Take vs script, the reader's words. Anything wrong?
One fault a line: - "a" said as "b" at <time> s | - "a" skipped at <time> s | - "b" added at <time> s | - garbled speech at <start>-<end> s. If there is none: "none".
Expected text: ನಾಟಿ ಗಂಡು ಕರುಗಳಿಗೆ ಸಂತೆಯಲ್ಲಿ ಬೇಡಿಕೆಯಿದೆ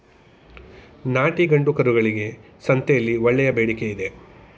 - "ಒಳ್ಳೆಯ" added at 3.2 s